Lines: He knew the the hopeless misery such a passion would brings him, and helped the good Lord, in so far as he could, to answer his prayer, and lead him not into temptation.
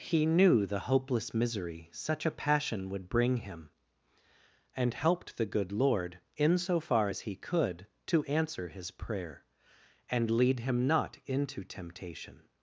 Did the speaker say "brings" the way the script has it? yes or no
no